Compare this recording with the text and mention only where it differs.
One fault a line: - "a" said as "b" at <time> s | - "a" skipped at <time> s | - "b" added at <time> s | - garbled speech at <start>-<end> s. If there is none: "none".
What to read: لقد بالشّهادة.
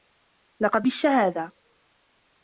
none